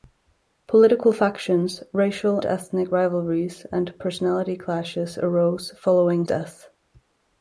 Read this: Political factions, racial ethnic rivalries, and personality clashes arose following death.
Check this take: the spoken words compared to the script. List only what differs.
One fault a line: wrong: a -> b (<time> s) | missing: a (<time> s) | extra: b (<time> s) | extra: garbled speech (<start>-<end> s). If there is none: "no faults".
no faults